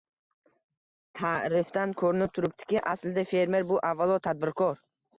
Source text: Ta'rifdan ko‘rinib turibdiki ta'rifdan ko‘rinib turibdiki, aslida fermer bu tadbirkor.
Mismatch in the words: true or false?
true